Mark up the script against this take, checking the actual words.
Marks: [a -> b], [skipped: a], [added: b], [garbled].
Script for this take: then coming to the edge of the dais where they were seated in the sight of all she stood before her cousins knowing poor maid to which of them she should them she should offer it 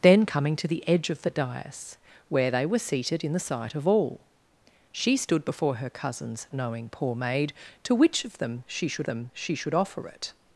then coming to the edge of the dais where they were seated in the sight of all she stood before her cousins knowing poor maid to which of them she should them she should offer it